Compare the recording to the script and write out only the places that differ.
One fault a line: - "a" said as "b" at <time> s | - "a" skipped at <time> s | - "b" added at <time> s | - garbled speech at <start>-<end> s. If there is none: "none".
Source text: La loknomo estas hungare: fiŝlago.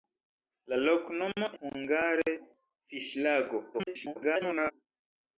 - "estas" skipped at 1.5 s
- garbled speech at 3.7-4.7 s